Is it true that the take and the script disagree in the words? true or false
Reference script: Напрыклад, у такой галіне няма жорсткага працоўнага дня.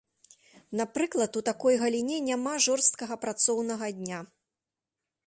false